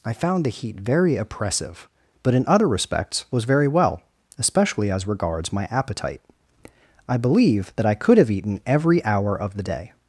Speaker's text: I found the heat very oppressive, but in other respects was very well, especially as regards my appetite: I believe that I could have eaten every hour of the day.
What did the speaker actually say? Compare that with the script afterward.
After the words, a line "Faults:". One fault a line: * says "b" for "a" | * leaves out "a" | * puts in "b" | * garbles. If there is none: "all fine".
I found the heat very oppressive, but in other respects was very well, especially as regards my appetite: I believe that I could have eaten every hour of the day.
Faults:
all fine